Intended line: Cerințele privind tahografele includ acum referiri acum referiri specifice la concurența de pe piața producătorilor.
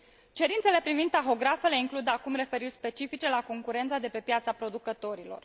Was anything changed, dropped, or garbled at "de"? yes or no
no